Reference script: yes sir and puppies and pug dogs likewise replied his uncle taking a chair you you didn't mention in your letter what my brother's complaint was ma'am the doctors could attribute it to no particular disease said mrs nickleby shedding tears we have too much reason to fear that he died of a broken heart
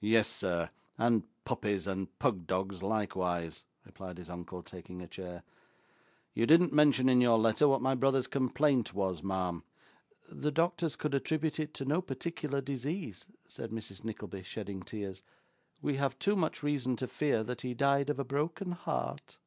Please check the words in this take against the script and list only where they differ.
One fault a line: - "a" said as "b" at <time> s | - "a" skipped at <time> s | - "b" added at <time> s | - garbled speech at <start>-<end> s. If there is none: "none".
- "you" skipped at 6.5 s